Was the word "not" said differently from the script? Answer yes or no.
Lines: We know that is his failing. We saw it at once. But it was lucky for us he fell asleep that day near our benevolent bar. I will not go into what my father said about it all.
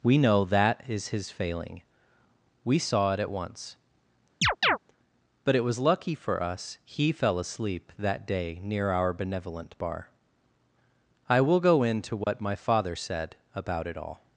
yes